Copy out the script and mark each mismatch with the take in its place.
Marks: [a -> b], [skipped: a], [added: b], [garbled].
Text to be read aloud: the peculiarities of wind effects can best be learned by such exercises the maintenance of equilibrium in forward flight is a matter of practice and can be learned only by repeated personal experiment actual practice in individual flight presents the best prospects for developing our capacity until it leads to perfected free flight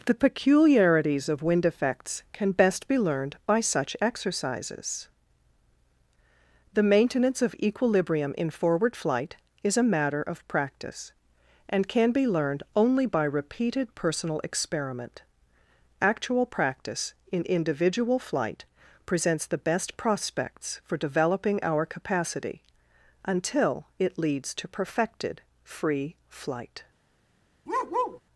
the peculiarities of wind effects can best be learned by such exercises the maintenance of equilibrium in forward flight is a matter of practice and can be learned only by repeated personal experiment actual practice in individual flight presents the best prospects for developing our capacity until it leads to perfected free flight